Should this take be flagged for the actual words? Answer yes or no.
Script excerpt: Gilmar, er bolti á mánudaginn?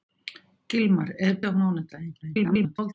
yes